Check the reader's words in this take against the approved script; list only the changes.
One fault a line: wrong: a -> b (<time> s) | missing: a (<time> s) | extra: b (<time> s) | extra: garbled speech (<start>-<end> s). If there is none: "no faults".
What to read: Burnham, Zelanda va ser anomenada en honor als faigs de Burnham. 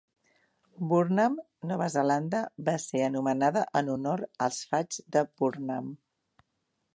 extra: Nova (1.7 s)